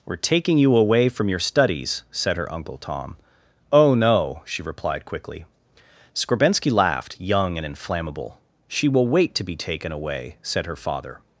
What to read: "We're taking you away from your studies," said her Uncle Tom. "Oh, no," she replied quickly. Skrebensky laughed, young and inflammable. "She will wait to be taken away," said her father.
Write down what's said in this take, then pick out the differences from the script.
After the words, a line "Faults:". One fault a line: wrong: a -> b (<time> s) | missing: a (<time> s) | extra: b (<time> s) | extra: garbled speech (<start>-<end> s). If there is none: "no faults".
"We're taking you away from your studies," said her Uncle Tom. "Oh, no," she replied quickly. Skrebensky laughed, young and inflammable. "She will wait to be taken away," said her father.
Faults:
no faults